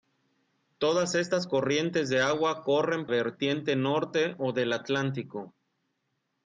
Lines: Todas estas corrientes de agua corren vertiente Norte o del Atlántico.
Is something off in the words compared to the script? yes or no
no